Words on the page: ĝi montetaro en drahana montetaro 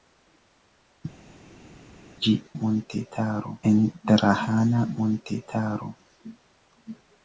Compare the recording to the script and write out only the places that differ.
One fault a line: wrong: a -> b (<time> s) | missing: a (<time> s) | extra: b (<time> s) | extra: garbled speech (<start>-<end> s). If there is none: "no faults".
no faults